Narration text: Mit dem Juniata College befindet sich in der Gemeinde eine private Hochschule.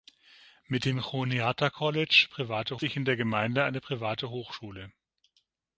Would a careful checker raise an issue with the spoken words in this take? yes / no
yes